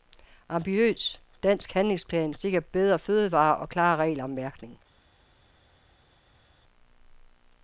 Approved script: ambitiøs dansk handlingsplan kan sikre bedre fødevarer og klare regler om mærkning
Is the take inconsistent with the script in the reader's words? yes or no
yes